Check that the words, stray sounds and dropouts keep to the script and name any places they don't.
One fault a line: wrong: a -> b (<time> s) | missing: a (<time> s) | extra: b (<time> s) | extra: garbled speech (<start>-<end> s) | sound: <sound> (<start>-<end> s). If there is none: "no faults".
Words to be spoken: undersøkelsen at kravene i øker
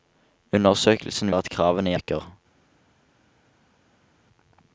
no faults